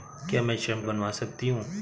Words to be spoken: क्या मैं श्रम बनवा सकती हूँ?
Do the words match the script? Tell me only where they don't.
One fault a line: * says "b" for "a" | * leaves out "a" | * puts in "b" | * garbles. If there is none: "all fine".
all fine